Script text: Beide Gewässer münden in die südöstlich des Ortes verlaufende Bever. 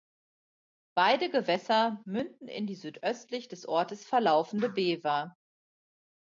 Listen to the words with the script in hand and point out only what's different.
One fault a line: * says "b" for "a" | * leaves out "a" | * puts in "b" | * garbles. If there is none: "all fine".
all fine